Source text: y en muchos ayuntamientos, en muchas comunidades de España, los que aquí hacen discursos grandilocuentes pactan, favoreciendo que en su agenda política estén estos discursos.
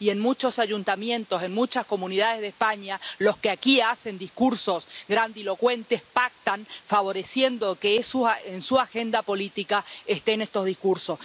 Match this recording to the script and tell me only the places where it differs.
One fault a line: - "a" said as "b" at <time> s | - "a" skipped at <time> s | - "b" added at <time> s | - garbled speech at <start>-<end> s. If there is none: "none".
none